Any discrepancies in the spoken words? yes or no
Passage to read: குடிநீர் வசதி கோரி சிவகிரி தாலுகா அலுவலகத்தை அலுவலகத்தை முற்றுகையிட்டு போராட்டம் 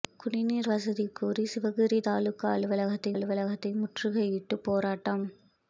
no